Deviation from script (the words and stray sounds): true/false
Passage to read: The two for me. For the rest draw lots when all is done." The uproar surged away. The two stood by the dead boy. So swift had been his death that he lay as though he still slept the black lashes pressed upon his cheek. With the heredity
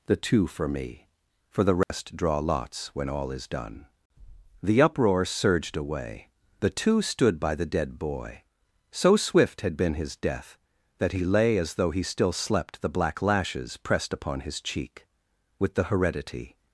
true